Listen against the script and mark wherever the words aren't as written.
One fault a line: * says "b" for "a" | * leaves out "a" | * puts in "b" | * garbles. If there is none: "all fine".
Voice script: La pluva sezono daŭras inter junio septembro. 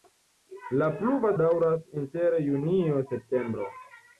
* leaves out "sezono"